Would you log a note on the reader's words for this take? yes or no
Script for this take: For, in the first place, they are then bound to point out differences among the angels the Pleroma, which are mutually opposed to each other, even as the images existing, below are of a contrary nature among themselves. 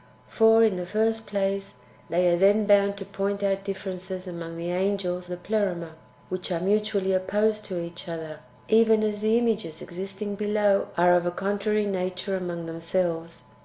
no